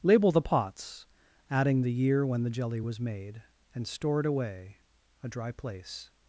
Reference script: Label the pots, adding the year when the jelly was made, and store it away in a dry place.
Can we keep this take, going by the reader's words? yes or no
no